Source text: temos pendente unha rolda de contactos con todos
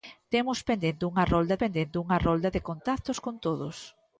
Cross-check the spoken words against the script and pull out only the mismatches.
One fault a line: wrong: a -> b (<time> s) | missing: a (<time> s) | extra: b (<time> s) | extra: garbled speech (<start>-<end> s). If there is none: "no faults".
extra: pendente unha rolda (1.6 s)